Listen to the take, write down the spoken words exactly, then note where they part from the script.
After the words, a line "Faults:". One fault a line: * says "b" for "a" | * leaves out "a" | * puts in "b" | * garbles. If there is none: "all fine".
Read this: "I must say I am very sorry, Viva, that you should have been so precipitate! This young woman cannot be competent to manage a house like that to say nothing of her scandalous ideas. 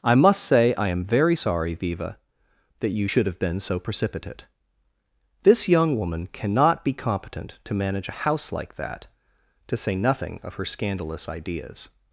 "I must say I am very sorry, Viva, that you should have been so precipitate! This young woman cannot be competent to manage a house like that to say nothing of her scandalous ideas.
Faults:
all fine